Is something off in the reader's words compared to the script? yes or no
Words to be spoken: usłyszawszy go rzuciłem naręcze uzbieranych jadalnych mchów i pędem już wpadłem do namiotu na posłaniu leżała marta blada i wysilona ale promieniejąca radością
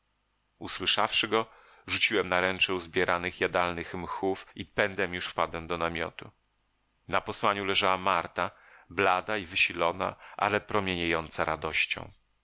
no